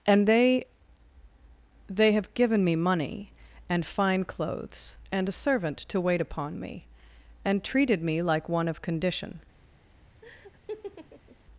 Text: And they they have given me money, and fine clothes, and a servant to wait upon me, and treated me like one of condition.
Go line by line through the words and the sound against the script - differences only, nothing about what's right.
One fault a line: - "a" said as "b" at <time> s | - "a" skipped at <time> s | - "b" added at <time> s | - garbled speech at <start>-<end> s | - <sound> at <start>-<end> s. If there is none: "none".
- laugh at 10.2-11.4 s